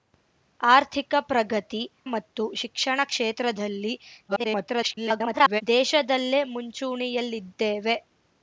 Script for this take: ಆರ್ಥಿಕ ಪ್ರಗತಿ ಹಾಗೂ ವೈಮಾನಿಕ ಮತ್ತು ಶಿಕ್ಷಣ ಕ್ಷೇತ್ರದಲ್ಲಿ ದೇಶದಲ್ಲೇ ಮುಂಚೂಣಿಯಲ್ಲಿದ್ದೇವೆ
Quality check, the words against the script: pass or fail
fail